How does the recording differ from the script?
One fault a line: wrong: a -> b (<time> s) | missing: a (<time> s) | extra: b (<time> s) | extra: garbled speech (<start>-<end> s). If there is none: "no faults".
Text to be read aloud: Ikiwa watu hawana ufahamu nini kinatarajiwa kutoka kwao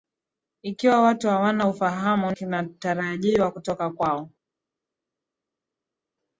missing: nini (2.3 s)